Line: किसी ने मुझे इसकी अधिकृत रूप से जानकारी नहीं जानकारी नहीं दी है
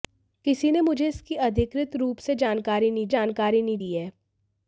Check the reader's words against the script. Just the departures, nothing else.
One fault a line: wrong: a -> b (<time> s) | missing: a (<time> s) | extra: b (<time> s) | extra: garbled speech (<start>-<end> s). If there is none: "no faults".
no faults